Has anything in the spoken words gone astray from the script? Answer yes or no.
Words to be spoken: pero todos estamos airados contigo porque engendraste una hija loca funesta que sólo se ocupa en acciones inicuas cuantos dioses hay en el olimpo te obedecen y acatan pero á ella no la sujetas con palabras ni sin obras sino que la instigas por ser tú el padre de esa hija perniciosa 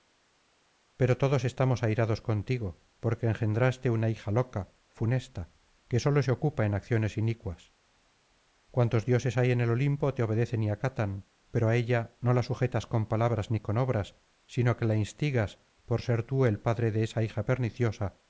yes